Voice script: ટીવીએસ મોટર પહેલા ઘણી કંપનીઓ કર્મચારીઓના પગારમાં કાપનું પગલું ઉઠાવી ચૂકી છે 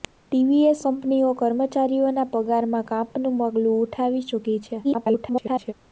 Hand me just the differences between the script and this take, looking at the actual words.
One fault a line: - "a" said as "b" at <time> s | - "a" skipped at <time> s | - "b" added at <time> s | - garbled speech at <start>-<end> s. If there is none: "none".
- "મોટર પહેલા ઘણી" skipped at 0.8 s
- garbled speech at 4.8-5.7 s